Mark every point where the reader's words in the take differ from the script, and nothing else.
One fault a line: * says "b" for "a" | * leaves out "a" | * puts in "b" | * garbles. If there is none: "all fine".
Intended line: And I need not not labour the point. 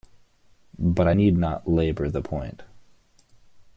* says "But" for "And"
* leaves out "not"